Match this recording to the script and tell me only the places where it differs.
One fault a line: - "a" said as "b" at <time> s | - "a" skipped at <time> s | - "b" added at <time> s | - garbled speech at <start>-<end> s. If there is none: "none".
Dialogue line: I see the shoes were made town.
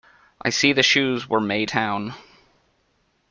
none